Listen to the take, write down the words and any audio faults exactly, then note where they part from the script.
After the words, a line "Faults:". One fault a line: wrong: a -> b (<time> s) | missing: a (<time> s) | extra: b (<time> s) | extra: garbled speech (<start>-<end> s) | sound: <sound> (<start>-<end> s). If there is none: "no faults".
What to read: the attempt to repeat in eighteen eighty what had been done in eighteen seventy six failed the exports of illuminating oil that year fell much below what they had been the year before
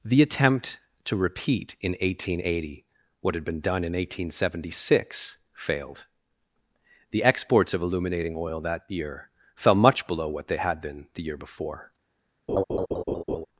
the attempt to repeat in eighteen eighty what had been done in eighteen seventy six failed the exports of illuminating oil that year fell much below what they had been the year before
Faults:
sound: laugh (12.5-13.5 s)